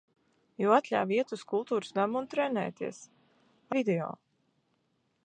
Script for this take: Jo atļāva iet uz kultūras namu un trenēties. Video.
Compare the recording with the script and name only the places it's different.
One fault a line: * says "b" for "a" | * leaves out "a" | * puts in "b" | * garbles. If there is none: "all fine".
all fine